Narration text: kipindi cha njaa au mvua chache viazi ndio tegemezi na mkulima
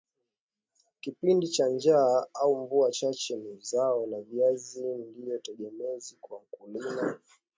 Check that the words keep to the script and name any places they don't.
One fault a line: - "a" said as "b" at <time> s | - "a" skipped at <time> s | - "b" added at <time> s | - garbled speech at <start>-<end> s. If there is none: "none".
- "ni zao la" added at 3.3 s
- "na" said as "kwa" at 6.2 s